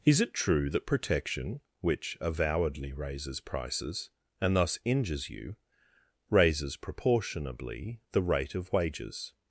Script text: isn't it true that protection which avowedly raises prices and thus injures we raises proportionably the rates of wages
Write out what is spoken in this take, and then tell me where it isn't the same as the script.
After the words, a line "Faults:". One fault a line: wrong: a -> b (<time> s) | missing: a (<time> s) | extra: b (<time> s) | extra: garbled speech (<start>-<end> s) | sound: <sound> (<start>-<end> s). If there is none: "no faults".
is it true that protection which avowedly raises prices and thus injures you raises proportionably the rate of wages
Faults:
wrong: isn't -> is (0.0 s)
wrong: we -> you (5.3 s)
wrong: rates -> rate (8.2 s)